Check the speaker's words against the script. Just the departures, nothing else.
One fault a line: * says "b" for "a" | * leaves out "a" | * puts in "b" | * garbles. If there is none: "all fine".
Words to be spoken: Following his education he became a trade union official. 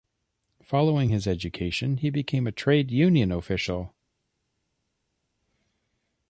all fine